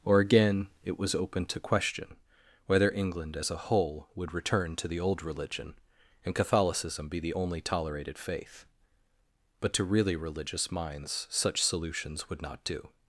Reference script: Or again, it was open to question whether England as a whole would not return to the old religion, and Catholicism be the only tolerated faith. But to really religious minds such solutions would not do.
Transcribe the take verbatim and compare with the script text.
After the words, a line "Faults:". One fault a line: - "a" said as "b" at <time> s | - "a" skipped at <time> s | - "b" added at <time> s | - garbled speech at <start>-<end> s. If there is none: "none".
Or again, it was open to question whether England as a whole would return to the old religion, and Catholicism be the only tolerated faith. But to really religious minds such solutions would not do.
Faults:
- "not" skipped at 4.3 s